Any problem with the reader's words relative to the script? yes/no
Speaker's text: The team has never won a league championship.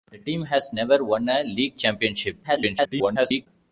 yes